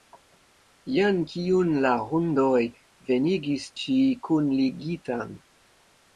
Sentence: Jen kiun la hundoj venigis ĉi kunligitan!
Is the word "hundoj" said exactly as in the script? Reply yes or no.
yes